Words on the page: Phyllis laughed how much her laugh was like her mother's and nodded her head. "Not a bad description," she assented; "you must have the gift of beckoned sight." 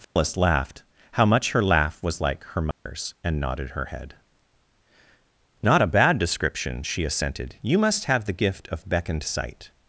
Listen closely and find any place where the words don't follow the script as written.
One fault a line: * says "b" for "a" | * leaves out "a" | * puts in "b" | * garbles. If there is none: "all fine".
all fine